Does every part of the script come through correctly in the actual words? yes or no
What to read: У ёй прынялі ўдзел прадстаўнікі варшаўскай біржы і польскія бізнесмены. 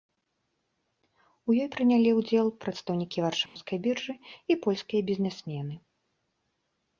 yes